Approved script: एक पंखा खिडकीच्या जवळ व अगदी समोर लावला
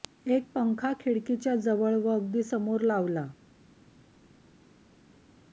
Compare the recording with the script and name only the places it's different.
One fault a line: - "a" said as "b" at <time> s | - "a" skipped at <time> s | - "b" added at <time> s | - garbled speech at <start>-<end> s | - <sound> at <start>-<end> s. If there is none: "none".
none